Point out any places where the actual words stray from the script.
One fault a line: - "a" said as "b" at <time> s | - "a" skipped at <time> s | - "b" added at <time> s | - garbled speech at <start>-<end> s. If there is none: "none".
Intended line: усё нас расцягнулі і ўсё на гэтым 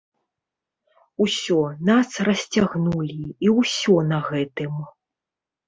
none